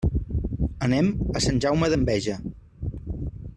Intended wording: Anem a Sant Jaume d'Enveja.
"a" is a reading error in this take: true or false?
false